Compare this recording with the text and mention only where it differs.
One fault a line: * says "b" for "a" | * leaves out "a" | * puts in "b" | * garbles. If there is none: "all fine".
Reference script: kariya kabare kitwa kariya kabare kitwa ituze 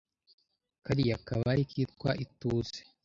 * leaves out "kariya kabare kitwa"